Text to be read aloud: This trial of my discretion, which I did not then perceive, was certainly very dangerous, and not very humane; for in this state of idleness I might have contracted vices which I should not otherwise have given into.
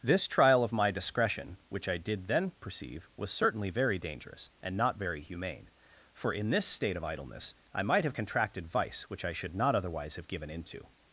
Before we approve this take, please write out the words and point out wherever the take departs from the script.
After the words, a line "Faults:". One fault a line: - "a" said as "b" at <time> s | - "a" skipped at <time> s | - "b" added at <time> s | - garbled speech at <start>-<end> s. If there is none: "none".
This trial of my discretion, which I did then perceive, was certainly very dangerous, and not very humane; for in this state of idleness I might have contracted vice which I should not otherwise have given into.
Faults:
- "not" skipped at 2.2 s
- "vices" said as "vice" at 8.6 s